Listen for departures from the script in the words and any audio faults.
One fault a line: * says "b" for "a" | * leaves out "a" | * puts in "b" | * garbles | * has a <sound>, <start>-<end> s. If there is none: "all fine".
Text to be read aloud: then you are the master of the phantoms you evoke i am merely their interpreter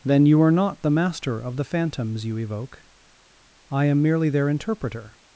* puts in "not"